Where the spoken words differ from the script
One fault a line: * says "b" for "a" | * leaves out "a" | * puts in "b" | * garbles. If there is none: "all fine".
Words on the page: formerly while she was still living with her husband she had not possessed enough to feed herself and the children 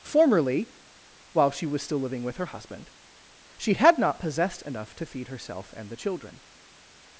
all fine